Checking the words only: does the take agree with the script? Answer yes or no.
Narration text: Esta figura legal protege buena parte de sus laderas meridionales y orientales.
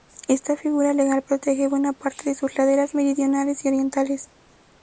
yes